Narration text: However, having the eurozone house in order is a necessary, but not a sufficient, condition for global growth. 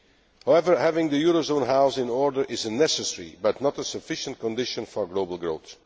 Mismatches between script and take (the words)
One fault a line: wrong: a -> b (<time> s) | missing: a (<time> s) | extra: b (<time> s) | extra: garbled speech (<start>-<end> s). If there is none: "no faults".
no faults